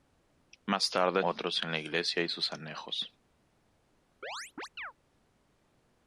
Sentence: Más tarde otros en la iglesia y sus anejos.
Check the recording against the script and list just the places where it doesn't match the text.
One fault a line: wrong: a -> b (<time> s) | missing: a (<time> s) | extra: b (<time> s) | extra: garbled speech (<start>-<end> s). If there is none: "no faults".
no faults